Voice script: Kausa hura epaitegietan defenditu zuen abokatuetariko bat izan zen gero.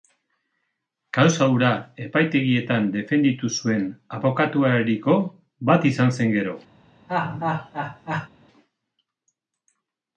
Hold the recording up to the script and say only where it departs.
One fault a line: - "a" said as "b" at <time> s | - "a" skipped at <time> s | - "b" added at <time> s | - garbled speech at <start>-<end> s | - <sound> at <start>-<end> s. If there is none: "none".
- laugh at 7.1-8.3 s